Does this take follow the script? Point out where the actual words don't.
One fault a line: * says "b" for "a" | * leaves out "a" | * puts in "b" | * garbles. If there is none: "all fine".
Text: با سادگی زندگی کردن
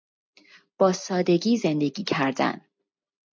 all fine